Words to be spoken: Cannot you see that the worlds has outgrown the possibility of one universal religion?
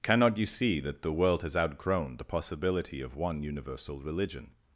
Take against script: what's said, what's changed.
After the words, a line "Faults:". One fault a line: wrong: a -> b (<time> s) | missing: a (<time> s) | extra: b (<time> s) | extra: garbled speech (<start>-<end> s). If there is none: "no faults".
Cannot you see that the world has outgrown the possibility of one universal religion?
Faults:
wrong: worlds -> world (1.1 s)